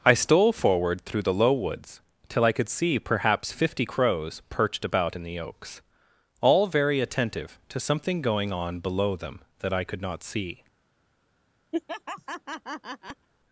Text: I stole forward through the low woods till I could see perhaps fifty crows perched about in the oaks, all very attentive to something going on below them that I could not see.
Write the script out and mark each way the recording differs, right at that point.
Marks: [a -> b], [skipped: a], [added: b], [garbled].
I stole forward through the low woods till I could see perhaps fifty crows perched about in the oaks, all very attentive to something going on below them that I could not see.